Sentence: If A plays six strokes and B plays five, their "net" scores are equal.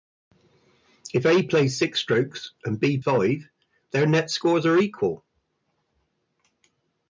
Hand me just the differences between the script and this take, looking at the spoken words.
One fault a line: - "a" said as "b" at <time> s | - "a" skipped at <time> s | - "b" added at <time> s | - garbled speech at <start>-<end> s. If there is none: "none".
- "plays" skipped at 3.0 s